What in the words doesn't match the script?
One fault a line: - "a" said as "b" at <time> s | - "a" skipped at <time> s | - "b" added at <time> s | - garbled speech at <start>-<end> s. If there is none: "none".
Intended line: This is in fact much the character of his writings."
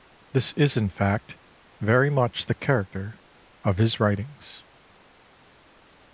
- "very" added at 1.8 s